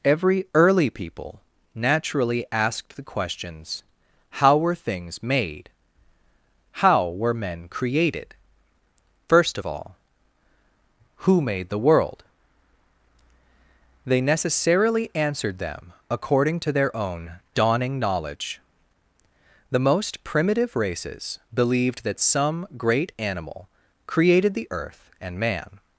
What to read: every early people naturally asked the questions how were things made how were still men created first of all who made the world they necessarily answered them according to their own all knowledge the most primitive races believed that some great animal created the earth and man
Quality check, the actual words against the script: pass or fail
fail